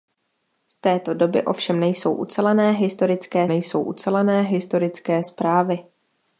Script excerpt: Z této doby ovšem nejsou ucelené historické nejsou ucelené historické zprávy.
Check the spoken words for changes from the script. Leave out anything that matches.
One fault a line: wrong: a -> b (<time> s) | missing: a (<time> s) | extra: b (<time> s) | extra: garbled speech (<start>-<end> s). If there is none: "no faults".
no faults